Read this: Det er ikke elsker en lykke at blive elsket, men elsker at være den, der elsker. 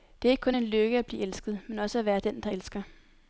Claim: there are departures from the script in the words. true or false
true